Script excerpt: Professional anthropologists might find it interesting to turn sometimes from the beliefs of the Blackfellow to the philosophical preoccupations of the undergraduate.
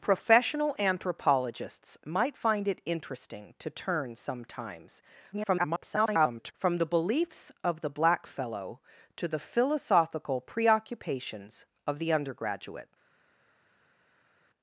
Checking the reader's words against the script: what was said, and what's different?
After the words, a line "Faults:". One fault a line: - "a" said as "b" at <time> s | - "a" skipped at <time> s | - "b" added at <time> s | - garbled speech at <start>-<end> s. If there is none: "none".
Professional anthropologists might find it interesting to turn sometimes [garbled] from the beliefs of the Blackfellow to the philosophical preoccupations of the undergraduate.
Faults:
- garbled speech at 5.3-6.5 s